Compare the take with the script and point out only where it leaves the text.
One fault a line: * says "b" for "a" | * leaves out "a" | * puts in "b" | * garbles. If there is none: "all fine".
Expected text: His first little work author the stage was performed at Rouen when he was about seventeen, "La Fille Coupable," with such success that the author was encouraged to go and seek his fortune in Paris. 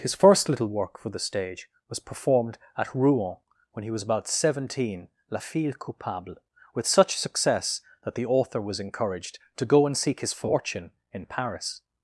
* says "for" for "author"